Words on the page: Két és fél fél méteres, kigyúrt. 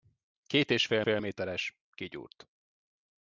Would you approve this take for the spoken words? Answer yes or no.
yes